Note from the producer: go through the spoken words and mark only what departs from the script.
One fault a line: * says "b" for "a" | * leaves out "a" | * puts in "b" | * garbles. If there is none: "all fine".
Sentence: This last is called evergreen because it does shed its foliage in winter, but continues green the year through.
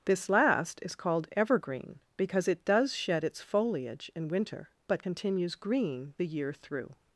all fine